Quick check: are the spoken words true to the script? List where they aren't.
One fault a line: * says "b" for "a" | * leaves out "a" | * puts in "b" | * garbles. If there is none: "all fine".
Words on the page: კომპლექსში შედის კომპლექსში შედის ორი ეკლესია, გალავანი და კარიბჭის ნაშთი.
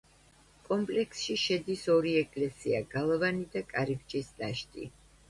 * leaves out "კომპლექსში შედის"